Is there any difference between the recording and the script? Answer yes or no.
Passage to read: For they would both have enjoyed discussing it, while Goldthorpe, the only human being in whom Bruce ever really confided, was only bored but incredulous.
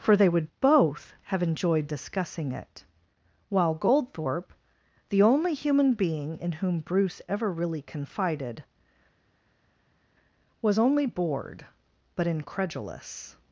no